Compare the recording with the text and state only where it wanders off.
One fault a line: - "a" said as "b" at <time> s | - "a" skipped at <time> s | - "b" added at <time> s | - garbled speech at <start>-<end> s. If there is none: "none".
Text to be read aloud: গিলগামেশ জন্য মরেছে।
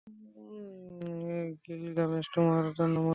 - "তোমার" added at 2.4 s